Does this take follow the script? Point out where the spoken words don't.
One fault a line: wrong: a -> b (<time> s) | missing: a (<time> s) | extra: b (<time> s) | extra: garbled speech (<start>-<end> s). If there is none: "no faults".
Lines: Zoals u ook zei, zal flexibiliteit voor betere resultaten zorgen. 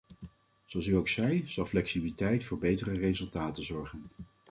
no faults